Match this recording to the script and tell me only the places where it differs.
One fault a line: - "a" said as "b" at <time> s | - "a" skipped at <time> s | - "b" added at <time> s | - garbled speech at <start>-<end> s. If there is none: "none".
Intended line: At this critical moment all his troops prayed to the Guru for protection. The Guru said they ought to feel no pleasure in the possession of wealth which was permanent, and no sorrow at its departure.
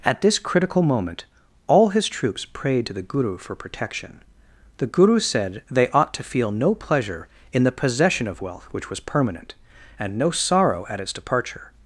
none